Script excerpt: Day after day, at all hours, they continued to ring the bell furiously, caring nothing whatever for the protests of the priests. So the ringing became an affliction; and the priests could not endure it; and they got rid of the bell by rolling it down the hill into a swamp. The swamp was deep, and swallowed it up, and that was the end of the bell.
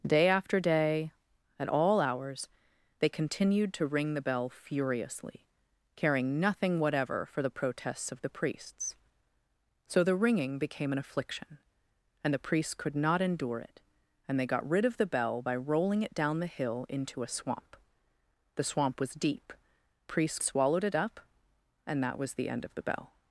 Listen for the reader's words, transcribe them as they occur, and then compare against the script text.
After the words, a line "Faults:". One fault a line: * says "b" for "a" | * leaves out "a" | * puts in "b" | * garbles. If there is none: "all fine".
Day after day, at all hours, they continued to ring the bell furiously, caring nothing whatever for the protests of the priests. So the ringing became an affliction; and the priests could not endure it; and they got rid of the bell by rolling it down the hill into a swamp. The swamp was deep, priests swallowed it up, and that was the end of the bell.
Faults:
* says "priests" for "and"